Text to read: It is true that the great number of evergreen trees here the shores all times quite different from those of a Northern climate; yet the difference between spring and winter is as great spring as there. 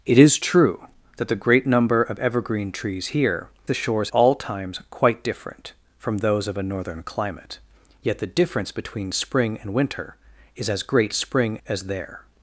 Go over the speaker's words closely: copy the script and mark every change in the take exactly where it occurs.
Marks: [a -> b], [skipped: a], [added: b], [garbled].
It is true that the great number of evergreen trees here the shores all times quite different from those of a Northern climate; yet the difference between spring and winter is as great spring as there.